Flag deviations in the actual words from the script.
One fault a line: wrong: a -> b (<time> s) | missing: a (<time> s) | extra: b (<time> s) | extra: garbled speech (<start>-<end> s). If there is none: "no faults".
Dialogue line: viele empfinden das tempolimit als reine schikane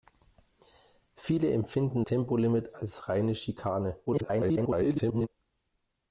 missing: das (2.0 s)
extra: garbled speech (4.1-5.3 s)